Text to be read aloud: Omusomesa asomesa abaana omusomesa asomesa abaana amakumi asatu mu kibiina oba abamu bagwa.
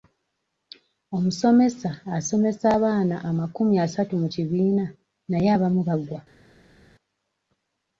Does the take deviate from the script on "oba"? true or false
true